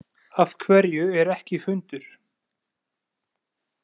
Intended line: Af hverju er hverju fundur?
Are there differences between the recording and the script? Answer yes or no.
yes